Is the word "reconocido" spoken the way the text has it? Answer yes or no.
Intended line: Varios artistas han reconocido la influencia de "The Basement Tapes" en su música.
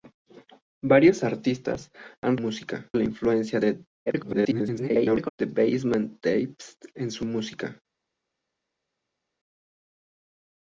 no